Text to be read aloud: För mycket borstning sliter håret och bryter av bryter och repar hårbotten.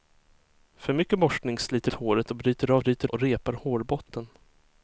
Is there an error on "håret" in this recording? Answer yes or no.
no